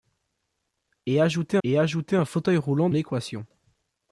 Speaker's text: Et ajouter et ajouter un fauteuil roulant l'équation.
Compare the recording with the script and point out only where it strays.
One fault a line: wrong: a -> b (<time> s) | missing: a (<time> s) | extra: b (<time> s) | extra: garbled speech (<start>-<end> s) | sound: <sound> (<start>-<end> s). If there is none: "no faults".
no faults